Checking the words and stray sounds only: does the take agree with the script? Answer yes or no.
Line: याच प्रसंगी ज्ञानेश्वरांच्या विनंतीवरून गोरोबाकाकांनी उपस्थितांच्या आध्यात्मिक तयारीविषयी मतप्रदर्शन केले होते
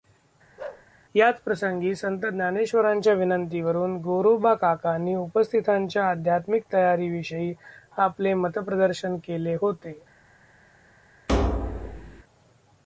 no